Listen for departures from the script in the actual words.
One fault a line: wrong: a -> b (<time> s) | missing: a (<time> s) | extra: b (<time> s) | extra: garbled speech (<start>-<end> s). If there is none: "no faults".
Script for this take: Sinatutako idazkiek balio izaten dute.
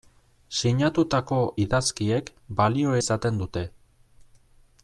no faults